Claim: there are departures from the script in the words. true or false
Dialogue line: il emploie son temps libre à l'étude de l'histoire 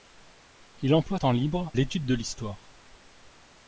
true